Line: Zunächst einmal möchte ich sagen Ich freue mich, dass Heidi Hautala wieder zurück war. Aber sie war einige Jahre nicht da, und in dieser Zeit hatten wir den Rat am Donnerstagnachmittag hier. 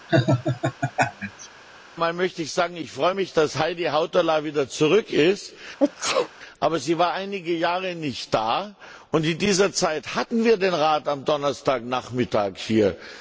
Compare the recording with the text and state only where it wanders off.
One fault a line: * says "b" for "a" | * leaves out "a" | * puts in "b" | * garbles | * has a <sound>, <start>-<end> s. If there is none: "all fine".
* has a laugh, 0.1-1.5 s
* says "ist" for "war"
* has a sneeze, 5.8-6.3 s